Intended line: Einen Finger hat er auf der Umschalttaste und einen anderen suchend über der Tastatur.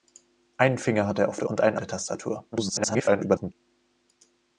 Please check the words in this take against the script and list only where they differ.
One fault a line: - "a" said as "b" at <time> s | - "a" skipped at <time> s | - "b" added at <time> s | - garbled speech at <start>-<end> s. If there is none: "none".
- "Umschalttaste" skipped at 1.5 s
- "anderen suchend über" skipped at 1.8 s
- garbled speech at 2.5-3.5 s